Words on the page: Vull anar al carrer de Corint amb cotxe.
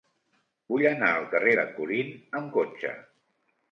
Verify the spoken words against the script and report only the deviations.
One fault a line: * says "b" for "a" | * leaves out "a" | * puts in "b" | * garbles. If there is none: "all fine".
all fine